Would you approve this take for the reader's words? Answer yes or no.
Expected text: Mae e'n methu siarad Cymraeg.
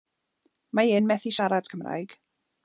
yes